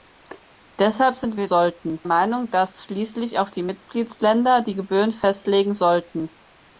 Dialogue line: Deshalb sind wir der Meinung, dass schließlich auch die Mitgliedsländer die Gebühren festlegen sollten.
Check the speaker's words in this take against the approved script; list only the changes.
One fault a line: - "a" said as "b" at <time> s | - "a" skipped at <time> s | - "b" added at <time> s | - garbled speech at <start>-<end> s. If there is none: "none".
- "der" said as "sollten" at 1.4 s